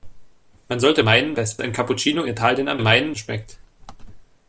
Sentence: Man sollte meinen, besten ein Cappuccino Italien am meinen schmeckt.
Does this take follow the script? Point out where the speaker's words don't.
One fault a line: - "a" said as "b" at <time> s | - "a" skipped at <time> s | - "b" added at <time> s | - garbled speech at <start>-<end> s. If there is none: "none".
none